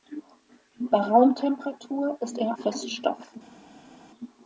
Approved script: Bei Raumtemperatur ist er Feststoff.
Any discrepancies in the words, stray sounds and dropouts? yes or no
no